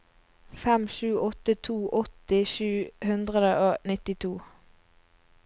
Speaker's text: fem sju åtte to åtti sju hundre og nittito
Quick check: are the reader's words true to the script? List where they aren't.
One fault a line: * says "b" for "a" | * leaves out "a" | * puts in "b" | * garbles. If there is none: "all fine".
all fine